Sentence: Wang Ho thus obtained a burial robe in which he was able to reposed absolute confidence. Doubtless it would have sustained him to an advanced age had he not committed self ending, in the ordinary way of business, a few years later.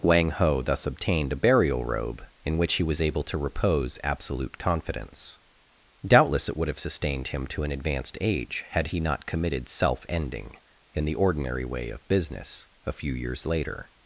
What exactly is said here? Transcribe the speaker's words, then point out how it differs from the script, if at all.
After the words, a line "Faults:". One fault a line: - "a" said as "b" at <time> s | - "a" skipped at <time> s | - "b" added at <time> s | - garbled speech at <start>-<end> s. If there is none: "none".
Wang Ho thus obtained a burial robe in which he was able to repose absolute confidence. Doubtless it would have sustained him to an advanced age had he not committed self ending, in the ordinary way of business, a few years later.
Faults:
- "reposed" said as "repose" at 3.4 s